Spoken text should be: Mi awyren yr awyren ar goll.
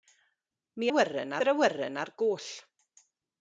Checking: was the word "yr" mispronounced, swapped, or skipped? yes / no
no